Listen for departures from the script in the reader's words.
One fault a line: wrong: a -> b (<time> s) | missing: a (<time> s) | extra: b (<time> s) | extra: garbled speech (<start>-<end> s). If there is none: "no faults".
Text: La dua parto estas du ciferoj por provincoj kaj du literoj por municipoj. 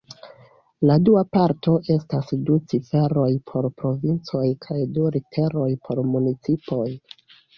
no faults